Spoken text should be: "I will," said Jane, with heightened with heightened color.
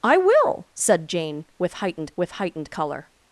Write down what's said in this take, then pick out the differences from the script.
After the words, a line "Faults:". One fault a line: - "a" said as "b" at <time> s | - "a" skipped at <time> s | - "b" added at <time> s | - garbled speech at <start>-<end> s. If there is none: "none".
"I will," said Jane, with heightened with heightened color.
Faults:
none